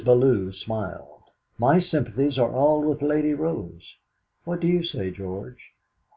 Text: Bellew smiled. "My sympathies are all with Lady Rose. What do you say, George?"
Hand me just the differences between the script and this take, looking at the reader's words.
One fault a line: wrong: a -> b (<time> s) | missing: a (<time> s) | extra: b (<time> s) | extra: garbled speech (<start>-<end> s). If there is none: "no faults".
no faults